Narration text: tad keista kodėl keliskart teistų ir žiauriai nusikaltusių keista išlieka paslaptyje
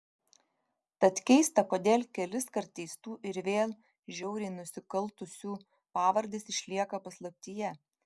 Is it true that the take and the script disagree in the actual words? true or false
true